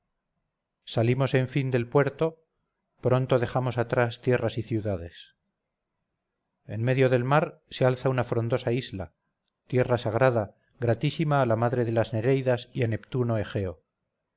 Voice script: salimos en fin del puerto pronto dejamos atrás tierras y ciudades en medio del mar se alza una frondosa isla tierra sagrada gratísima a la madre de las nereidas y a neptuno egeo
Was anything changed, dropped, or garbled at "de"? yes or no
no